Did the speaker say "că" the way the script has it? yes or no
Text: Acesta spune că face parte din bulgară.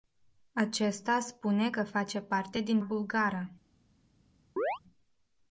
yes